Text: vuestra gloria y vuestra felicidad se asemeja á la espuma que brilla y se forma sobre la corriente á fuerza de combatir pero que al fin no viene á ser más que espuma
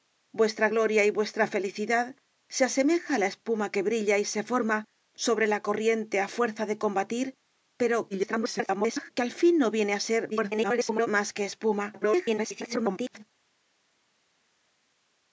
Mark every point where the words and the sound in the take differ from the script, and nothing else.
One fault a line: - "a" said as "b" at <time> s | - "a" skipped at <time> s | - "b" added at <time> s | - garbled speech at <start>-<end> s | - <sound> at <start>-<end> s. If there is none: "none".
- garbled speech at 8.1-9.1 s
- garbled speech at 10.3-11.1 s
- garbled speech at 11.9-13.2 s